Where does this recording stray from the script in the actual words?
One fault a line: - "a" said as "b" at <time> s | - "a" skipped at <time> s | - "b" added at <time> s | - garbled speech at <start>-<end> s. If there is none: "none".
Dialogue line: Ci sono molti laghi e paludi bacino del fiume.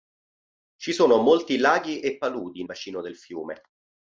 none